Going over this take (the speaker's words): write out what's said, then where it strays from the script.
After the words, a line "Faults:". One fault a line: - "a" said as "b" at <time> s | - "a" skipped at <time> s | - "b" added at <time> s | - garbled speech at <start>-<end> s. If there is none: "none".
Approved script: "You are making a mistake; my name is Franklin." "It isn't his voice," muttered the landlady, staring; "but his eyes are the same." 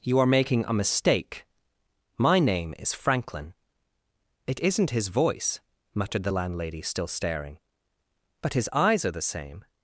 "You are making a mistake; my name is Franklin." "It isn't his voice," muttered the landlady, still staring; "but his eyes are the same."
Faults:
- "still" added at 6.8 s